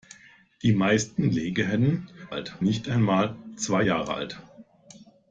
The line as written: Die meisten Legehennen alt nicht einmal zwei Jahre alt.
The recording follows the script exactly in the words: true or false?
true